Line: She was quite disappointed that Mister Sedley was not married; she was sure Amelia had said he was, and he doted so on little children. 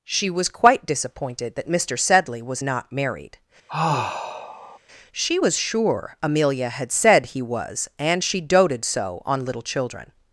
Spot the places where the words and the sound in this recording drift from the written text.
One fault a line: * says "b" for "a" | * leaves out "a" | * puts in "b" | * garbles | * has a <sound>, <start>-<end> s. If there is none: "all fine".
* has a sigh, 3.7-4.8 s
* says "she" for "he"